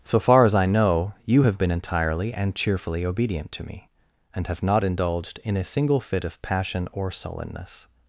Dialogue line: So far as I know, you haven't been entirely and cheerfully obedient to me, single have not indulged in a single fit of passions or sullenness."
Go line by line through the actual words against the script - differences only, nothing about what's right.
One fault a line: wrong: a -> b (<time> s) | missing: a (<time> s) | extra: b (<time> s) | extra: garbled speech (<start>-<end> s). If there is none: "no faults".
wrong: haven't -> have (1.4 s)
wrong: single -> and (4.3 s)
wrong: passions -> passion (6.4 s)